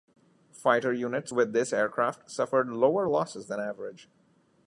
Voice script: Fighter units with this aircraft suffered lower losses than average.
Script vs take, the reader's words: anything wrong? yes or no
no